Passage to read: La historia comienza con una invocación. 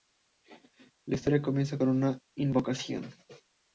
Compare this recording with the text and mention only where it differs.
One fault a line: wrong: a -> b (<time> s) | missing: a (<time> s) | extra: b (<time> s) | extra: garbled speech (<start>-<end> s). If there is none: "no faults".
no faults